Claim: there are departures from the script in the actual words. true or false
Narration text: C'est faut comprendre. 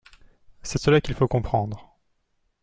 true